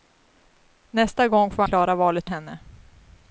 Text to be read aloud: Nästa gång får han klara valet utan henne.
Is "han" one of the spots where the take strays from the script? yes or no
yes